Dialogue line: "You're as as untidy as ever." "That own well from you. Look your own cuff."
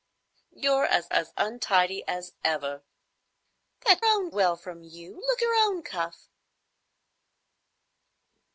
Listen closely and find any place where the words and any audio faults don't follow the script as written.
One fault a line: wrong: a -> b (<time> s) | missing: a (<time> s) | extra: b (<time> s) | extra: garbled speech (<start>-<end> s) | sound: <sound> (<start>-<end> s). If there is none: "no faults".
no faults